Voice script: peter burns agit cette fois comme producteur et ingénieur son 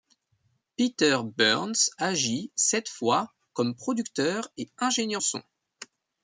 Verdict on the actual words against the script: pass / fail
pass